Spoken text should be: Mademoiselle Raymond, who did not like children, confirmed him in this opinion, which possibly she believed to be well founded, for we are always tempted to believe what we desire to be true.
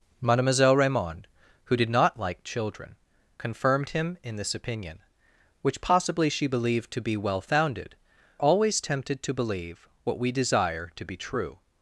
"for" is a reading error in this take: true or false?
true